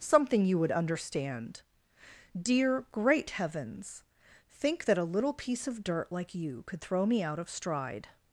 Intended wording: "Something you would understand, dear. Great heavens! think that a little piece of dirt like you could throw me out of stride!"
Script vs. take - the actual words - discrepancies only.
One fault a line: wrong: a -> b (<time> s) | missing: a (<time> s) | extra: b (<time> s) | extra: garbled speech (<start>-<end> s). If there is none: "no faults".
no faults